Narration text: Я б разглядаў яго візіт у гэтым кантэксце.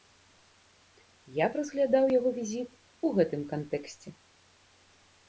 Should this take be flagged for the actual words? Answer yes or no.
no